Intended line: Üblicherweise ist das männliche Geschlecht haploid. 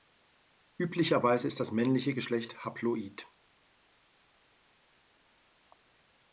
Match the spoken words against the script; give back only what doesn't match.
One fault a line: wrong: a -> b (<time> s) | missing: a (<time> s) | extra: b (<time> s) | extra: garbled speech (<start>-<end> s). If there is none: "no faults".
no faults